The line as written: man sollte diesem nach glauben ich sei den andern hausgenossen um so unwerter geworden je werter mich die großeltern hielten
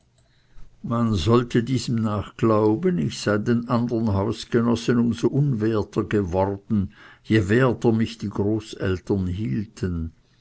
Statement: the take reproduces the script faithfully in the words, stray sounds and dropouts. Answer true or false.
true